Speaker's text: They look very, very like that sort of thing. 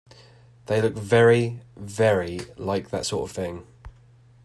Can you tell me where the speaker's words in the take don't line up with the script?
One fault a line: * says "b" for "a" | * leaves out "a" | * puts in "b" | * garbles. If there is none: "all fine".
all fine